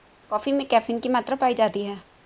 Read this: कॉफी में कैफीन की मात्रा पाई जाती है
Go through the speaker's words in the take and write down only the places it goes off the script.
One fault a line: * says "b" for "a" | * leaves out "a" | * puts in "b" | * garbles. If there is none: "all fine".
all fine